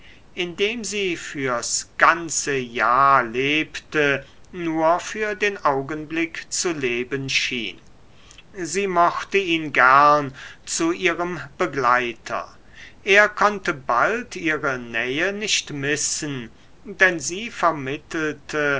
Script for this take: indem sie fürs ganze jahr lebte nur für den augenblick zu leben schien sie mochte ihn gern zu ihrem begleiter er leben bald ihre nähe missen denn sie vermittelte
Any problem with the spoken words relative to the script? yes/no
yes